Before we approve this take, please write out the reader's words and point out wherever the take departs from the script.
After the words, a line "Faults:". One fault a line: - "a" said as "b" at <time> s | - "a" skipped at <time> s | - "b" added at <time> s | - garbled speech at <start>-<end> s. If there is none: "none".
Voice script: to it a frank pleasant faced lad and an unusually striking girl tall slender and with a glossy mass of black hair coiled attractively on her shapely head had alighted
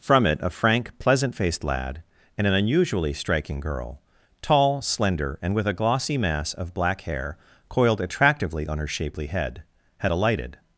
from it a frank pleasant faced lad and an unusually striking girl tall slender and with a glossy mass of black hair coiled attractively on her shapely head had alighted
Faults:
- "to" said as "from" at 0.0 s